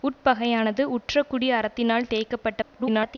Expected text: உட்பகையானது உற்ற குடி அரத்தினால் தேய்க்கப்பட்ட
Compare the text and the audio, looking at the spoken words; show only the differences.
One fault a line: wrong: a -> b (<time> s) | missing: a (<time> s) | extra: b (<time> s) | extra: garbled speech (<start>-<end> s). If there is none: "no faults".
extra: garbled speech (2.6-3.2 s)